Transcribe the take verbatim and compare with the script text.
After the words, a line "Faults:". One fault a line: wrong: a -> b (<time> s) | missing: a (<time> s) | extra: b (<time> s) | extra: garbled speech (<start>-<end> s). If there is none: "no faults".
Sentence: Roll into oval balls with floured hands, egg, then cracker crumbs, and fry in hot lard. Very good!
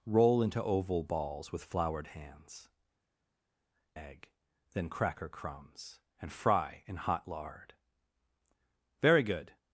Roll into oval balls with floured hands, egg, then cracker crumbs, and fry in hot lard. Very good!
Faults:
no faults